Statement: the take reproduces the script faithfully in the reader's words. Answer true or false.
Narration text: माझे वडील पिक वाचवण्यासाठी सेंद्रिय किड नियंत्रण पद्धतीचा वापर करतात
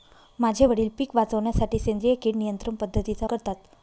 false